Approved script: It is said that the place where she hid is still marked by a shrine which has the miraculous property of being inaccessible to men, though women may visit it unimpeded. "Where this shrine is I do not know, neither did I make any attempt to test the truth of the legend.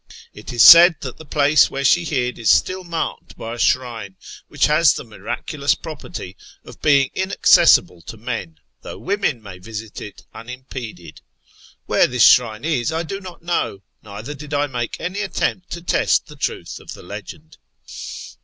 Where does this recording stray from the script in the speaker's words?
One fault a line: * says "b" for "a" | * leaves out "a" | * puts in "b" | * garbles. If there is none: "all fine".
all fine